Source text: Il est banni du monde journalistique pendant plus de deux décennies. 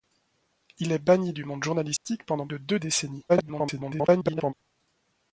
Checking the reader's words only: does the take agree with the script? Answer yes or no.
no